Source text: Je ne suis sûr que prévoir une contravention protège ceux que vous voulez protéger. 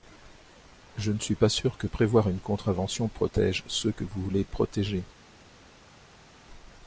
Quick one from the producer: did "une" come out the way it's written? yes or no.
yes